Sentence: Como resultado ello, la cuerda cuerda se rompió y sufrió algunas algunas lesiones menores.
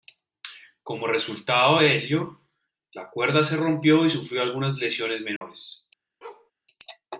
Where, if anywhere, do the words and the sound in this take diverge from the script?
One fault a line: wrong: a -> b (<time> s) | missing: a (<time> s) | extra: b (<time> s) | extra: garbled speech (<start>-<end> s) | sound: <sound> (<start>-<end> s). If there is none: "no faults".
extra: de (1.8 s)
missing: cuerda (3.4 s)
missing: algunas (4.8 s)
sound: dropout (5.4-5.4 s)
sound: bark (6.2-6.5 s)